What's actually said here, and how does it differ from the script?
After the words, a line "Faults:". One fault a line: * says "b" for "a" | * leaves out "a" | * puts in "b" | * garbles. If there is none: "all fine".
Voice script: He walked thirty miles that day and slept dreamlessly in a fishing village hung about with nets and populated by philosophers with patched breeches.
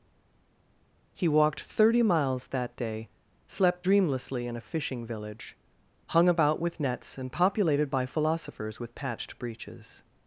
He walked thirty miles that day slept dreamlessly in a fishing village hung about with nets and populated by philosophers with patched breeches.
Faults:
* leaves out "and"